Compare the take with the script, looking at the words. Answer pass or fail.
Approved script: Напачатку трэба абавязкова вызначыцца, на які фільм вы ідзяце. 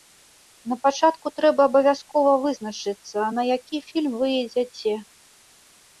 pass